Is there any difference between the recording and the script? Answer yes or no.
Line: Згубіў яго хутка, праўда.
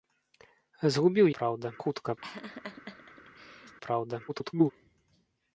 yes